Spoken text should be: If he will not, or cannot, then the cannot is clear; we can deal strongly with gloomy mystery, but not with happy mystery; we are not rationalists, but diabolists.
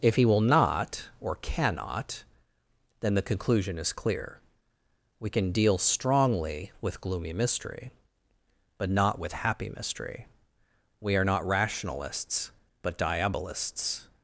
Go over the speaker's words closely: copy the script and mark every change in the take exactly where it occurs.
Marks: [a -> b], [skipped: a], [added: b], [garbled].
If he will not, or cannot, then the [cannot -> conclusion] is clear; we can deal strongly with gloomy mystery, but not with happy mystery; we are not rationalists, but diabolists.